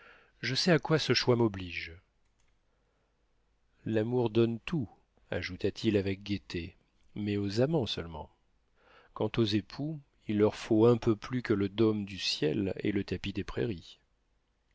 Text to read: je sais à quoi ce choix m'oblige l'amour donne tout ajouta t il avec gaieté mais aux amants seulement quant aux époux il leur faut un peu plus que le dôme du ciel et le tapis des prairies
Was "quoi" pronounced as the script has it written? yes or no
yes